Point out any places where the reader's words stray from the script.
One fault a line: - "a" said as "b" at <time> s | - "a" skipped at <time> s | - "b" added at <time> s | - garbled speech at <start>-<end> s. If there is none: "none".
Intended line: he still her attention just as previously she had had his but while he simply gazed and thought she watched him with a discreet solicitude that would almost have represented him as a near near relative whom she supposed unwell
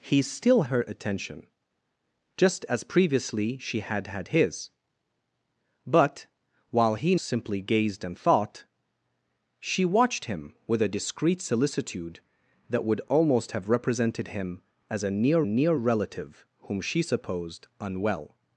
none